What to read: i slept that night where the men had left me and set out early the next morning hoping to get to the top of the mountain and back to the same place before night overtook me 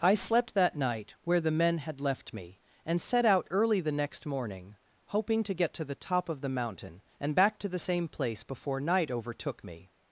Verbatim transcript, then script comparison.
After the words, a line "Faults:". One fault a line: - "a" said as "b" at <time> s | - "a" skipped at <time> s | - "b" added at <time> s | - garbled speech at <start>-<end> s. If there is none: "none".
i slept that night where the men had left me and set out early the next morning hoping to get to the top of the mountain and back to the same place before night overtook me
Faults:
none